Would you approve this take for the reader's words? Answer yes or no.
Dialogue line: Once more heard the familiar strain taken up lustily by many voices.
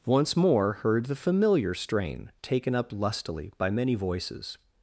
yes